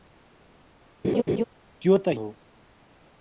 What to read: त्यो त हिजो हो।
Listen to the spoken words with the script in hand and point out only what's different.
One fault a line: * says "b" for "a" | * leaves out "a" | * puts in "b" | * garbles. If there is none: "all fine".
* leaves out "हिजो"